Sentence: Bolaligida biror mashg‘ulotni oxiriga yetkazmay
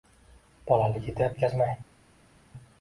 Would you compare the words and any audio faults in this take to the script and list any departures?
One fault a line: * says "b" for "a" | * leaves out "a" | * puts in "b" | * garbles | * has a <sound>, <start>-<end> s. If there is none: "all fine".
* leaves out "biror mashg‘ulotni oxiriga"